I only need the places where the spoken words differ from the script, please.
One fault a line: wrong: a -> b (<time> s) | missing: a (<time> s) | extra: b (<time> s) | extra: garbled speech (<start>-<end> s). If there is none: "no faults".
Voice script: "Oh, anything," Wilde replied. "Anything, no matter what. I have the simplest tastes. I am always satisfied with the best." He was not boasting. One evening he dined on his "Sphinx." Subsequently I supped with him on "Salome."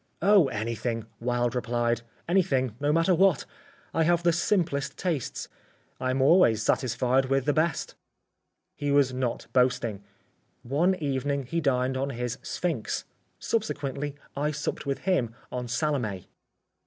no faults